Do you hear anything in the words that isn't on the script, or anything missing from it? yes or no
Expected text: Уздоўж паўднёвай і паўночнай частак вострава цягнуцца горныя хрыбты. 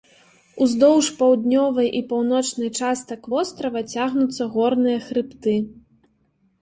no